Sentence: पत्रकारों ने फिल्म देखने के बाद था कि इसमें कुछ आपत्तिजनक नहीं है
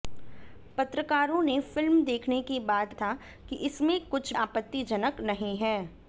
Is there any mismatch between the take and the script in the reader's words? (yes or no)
no